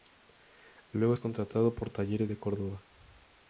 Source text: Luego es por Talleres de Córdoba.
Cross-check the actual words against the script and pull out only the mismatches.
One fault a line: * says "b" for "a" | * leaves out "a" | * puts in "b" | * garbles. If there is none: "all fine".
* puts in "contratado"